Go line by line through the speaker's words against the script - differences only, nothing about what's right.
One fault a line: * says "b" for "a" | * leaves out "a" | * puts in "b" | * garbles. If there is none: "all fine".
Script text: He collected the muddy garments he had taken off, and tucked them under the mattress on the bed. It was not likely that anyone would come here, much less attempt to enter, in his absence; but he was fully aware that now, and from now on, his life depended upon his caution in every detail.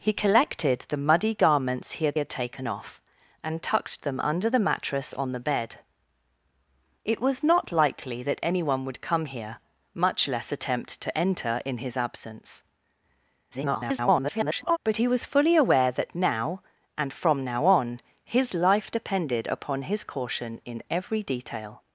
* puts in "had"
* garbles